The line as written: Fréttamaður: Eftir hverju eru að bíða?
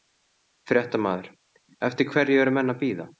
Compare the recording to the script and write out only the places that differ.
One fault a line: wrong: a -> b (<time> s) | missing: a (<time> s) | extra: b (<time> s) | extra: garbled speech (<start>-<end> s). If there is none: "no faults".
extra: menn (2.6 s)